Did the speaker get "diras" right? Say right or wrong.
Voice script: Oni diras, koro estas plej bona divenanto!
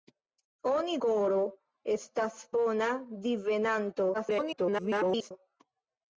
wrong